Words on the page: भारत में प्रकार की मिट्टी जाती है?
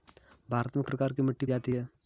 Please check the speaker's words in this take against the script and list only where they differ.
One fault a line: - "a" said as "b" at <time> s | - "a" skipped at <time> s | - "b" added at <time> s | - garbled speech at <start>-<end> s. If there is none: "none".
none